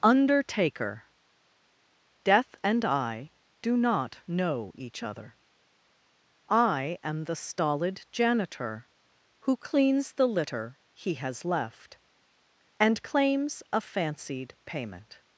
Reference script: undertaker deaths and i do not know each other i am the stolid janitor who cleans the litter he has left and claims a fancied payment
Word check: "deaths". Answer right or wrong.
wrong